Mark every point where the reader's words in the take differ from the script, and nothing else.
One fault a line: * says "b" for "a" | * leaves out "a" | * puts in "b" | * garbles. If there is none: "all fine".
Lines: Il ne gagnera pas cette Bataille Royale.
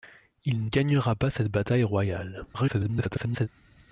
* leaves out "ne"
* garbles